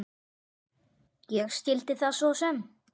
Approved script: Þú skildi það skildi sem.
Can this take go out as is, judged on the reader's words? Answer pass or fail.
fail